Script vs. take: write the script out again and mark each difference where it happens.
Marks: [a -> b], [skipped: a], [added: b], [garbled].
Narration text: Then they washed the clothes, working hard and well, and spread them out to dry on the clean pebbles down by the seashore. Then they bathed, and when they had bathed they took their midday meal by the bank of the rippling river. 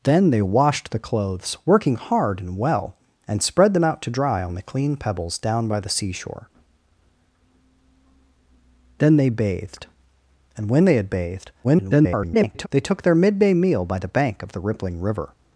Then they washed the clothes, working hard and well, and spread them out to dry on the clean pebbles down by the seashore. Then they bathed, and when they had bathed [garbled] they took their midday meal by the bank of the rippling river.